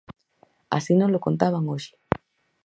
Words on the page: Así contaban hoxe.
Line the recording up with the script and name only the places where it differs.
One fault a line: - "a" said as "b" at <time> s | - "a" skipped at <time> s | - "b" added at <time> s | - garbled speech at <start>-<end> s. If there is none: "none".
- "nolo" added at 0.9 s